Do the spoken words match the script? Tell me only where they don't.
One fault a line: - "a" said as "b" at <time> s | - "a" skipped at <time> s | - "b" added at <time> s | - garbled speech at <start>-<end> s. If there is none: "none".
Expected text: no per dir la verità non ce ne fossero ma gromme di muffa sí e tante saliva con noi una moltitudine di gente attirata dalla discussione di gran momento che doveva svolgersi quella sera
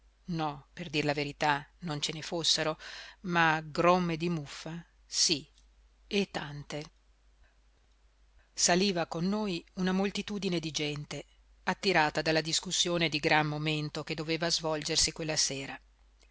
none